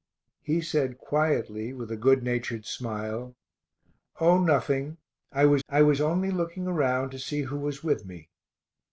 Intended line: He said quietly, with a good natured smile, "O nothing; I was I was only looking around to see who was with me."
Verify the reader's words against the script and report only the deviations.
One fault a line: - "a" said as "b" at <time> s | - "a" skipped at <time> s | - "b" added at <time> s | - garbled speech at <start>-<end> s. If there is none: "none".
none